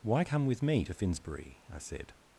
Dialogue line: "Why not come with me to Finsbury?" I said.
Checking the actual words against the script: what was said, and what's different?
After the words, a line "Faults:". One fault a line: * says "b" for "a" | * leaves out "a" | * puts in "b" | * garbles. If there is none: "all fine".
"Why come with me to Finsbury?" I said.
Faults:
* leaves out "not"